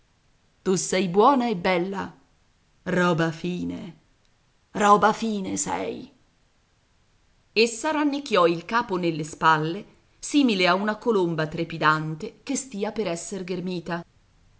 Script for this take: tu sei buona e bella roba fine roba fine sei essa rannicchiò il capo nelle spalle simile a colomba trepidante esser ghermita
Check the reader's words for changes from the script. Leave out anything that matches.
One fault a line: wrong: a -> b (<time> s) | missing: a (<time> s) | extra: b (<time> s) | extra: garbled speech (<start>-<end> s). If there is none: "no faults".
extra: una (10.7 s)
extra: che stia per (12.4 s)